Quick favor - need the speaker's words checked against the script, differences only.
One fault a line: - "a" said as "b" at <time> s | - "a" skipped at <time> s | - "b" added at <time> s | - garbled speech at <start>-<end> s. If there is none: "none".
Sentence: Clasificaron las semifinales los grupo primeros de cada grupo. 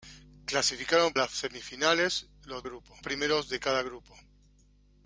none